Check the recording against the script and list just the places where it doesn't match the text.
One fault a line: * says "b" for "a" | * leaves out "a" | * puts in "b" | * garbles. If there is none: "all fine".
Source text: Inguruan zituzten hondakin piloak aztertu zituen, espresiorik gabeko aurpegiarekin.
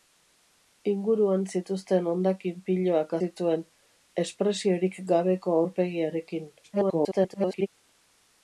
* leaves out "aztertu"
* garbles